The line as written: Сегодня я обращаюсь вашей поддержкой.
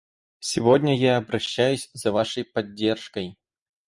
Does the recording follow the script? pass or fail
fail